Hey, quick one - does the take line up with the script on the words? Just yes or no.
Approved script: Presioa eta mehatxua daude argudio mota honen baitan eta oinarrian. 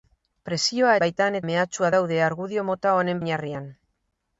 no